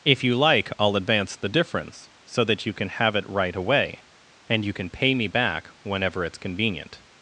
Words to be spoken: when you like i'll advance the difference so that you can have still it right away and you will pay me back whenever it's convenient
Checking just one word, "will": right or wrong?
wrong